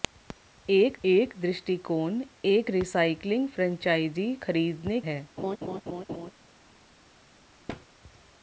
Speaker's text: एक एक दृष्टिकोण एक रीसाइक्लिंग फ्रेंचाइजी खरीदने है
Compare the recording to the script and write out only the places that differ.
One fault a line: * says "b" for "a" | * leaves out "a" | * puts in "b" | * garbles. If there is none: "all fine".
all fine